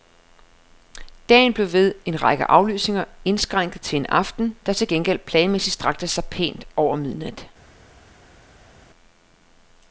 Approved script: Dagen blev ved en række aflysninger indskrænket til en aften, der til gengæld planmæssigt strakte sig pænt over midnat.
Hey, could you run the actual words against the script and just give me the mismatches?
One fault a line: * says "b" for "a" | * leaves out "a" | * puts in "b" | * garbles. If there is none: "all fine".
all fine